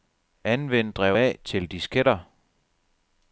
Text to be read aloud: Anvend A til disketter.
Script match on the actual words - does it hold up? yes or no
no